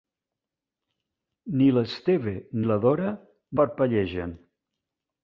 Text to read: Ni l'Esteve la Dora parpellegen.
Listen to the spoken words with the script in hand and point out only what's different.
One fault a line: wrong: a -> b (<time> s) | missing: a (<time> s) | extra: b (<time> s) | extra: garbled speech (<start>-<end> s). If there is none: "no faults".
no faults